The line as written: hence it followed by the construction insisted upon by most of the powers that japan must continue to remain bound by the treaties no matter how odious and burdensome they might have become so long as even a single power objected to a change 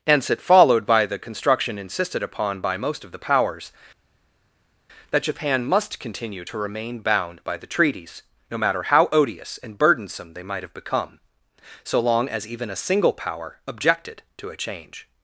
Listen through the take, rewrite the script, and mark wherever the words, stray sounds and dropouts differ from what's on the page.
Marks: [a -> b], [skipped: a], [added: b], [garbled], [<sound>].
hence it followed by the construction insisted upon by most of the powers that japan must continue to remain bound by the treaties no matter how odious and burdensome they might have become so long as even a single power objected to a change